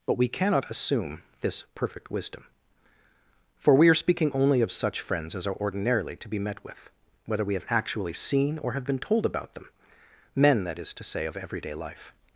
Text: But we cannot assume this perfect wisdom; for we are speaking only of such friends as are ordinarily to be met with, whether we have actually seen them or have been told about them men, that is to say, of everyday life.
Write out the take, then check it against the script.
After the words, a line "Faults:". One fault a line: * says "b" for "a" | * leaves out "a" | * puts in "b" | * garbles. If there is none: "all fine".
But we cannot assume this perfect wisdom; for we are speaking only of such friends as are ordinarily to be met with, whether we have actually seen or have been told about them men, that is to say, of everyday life.
Faults:
* leaves out "them"